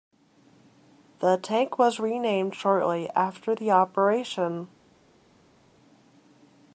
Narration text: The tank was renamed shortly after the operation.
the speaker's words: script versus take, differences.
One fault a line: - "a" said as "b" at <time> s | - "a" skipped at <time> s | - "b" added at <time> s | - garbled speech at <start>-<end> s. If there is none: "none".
none